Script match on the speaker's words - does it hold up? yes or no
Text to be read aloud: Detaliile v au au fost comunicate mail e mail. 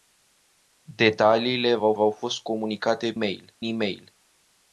yes